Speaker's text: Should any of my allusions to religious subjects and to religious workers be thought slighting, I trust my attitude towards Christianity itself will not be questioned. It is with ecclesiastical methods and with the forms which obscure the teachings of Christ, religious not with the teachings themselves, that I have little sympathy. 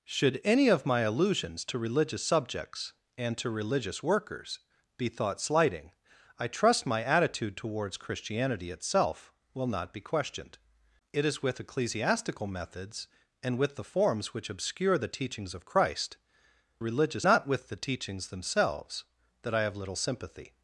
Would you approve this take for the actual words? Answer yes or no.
yes